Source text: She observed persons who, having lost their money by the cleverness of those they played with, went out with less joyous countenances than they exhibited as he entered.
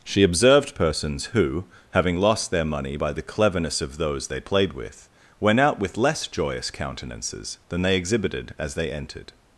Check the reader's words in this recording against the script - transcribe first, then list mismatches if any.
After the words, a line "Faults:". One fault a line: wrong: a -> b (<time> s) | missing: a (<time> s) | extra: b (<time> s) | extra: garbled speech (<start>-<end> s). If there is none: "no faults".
She observed persons who, having lost their money by the cleverness of those they played with, went out with less joyous countenances than they exhibited as they entered.
Faults:
wrong: he -> they (8.7 s)